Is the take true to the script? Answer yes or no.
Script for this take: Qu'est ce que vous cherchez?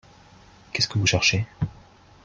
yes